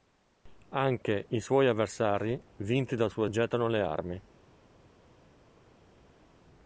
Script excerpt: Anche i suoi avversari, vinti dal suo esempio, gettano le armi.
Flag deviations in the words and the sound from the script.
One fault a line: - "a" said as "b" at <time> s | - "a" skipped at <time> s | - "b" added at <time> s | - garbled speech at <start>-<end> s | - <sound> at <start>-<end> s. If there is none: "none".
- "esempio" skipped at 3.2 s